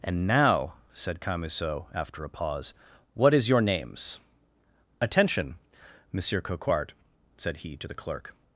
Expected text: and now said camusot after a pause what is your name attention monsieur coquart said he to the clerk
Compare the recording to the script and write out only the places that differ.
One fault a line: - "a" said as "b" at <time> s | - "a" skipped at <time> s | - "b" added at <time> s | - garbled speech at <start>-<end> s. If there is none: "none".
- "name" said as "names" at 3.6 s